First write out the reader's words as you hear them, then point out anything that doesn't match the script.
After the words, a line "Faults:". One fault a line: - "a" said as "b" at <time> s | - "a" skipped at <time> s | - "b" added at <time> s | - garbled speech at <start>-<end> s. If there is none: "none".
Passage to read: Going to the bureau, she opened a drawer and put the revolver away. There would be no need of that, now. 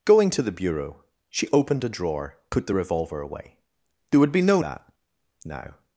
Going to the bureau, she opened a drawer put the revolver away. There would be no that, now.
Faults:
- "and" skipped at 2.4 s
- "need of" skipped at 4.6 s